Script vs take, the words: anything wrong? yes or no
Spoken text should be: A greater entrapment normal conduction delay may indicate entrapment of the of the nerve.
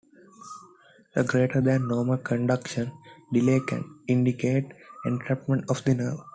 yes